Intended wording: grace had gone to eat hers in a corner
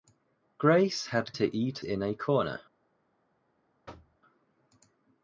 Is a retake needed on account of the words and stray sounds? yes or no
yes